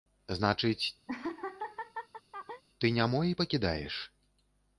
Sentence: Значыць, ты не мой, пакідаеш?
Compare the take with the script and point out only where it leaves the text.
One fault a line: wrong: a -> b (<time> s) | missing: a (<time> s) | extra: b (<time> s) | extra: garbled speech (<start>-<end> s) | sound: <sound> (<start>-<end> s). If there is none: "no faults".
sound: laugh (1.1-2.6 s)